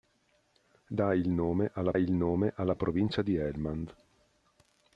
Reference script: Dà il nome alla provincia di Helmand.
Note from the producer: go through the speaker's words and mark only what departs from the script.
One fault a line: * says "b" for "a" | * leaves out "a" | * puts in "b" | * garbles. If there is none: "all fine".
* puts in "il nome alla"